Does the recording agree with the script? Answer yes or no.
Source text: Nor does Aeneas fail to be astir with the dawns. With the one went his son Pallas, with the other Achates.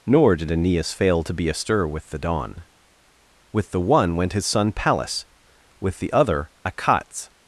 no